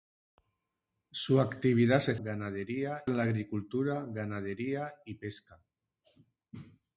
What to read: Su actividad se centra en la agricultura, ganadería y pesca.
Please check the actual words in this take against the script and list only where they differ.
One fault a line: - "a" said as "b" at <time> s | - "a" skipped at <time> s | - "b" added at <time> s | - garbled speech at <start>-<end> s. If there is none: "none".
- "centra" said as "ganadería" at 2.2 s